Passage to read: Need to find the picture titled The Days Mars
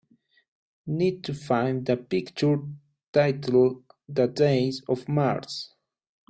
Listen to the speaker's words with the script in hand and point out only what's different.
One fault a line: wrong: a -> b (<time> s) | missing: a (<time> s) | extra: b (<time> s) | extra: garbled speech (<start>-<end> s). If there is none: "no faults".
extra: of (4.9 s)